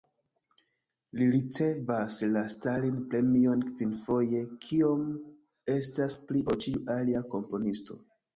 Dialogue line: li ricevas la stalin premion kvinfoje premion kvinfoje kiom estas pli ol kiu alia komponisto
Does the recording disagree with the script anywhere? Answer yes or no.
yes